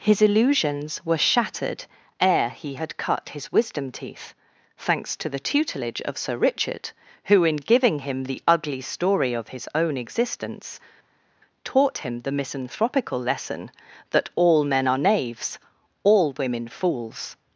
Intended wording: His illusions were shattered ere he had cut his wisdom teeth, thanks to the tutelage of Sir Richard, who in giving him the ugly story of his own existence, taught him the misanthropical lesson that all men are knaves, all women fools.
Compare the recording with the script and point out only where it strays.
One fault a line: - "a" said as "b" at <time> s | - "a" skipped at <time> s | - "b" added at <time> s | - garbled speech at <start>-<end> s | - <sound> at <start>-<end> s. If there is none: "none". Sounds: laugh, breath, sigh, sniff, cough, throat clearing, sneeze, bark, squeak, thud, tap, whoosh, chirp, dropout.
none